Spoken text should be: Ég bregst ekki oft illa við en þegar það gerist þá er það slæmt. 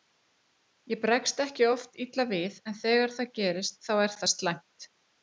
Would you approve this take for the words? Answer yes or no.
yes